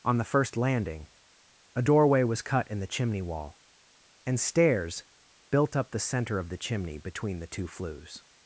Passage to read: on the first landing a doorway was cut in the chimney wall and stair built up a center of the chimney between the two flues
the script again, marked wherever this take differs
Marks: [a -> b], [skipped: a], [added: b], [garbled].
on the first landing a doorway was cut in the chimney wall and [stair -> stairs] built up [a -> the] center of the chimney between the two flues